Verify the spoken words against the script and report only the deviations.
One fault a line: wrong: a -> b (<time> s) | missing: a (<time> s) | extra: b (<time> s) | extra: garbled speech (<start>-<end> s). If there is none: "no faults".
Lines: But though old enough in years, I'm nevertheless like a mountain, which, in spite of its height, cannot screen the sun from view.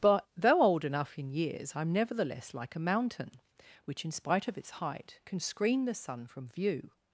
wrong: cannot -> can (5.2 s)